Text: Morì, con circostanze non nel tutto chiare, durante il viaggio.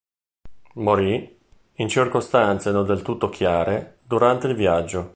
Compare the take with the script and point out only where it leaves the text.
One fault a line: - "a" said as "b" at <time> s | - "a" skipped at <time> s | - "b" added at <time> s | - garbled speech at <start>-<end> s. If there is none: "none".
- "con" said as "in" at 1.7 s
- "nel" said as "del" at 2.8 s